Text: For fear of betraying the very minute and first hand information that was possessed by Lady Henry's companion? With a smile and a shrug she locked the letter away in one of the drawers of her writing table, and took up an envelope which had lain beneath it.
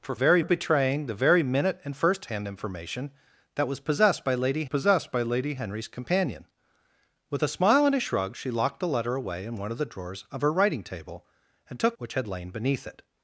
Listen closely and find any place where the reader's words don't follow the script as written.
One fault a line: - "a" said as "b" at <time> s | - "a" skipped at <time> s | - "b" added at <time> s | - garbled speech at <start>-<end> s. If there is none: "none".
- "fear" said as "very" at 0.1 s
- "possessed by Lady" added at 4.6 s
- "up an envelope" skipped at 12.0 s